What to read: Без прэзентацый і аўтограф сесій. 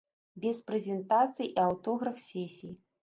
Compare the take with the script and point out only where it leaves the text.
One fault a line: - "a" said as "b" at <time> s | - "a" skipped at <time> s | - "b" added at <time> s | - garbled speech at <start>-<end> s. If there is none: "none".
none